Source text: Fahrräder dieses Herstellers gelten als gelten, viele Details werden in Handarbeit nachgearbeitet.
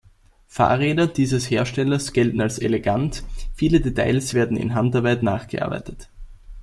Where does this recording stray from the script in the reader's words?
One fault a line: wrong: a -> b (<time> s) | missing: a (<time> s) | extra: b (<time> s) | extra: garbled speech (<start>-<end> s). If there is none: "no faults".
wrong: gelten -> elegant (2.6 s)